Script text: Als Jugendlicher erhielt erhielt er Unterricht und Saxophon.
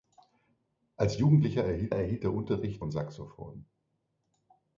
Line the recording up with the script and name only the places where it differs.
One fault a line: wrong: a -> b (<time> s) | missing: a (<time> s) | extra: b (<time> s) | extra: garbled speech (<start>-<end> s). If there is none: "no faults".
no faults